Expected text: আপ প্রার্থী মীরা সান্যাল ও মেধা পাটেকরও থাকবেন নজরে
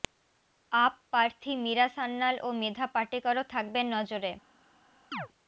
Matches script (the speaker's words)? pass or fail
pass